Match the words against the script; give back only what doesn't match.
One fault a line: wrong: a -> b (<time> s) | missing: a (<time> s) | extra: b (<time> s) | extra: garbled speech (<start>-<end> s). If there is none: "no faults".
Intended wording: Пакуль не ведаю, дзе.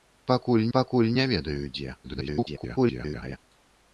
extra: пакуль (0.8 s)
extra: garbled speech (2.0-3.4 s)